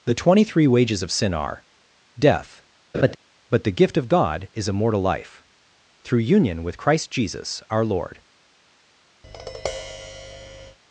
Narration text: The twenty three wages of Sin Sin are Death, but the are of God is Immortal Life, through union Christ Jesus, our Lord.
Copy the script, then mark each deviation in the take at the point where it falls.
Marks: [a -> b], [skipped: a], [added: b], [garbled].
The twenty three wages of Sin [skipped: Sin] are Death, but the [are -> gift] of God is Immortal Life, through union [added: with] Christ Jesus, our Lord.